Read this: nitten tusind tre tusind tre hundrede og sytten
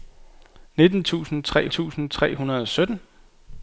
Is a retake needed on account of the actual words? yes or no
no